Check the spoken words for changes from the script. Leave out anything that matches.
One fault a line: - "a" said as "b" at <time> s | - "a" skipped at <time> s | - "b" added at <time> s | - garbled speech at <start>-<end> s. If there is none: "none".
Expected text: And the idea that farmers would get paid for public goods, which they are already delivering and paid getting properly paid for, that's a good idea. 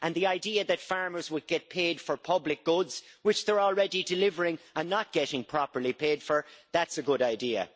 - "paid" said as "not" at 4.9 s